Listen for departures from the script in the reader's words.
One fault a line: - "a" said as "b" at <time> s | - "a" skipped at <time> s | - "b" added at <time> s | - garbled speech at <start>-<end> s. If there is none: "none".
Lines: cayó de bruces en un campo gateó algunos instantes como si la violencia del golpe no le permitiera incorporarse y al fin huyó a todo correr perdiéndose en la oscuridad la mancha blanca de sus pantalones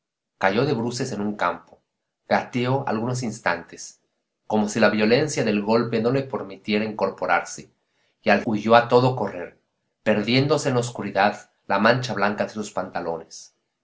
- "fin" skipped at 8.4 s